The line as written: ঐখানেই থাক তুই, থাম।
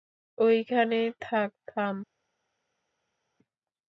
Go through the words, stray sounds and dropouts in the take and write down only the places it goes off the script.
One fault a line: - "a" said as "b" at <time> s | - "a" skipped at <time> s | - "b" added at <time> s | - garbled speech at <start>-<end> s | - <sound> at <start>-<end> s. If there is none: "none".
- "তুই" skipped at 1.5 s